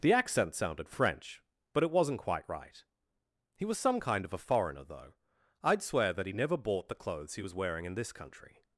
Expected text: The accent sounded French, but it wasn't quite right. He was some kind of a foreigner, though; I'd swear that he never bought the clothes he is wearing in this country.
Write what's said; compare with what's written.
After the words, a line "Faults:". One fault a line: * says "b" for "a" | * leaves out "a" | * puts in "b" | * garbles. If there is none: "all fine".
The accent sounded French, but it wasn't quite right. He was some kind of a foreigner, though; I'd swear that he never bought the clothes he was wearing in this country.
Faults:
* says "was" for "is"